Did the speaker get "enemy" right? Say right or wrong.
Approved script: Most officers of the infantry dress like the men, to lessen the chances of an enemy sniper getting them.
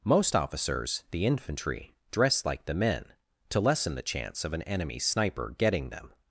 right